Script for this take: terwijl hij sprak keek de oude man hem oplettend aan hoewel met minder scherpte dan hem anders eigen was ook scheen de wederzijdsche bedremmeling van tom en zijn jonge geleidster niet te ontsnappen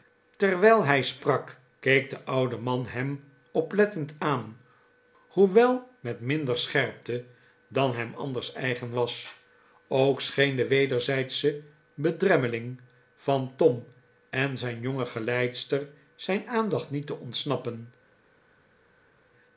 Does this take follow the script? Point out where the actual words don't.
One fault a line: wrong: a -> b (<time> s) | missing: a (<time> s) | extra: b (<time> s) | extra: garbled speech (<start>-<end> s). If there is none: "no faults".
extra: zijn aandacht (16.1 s)